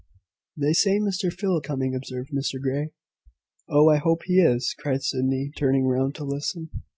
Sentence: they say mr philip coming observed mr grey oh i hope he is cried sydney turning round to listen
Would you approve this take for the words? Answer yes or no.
yes